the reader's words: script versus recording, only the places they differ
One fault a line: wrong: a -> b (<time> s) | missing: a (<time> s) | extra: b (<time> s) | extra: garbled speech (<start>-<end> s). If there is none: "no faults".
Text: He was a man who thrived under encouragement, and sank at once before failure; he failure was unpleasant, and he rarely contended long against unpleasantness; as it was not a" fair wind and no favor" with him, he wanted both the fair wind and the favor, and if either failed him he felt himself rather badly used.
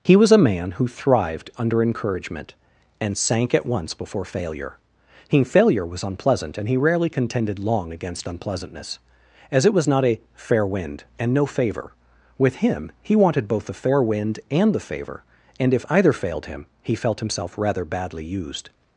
no faults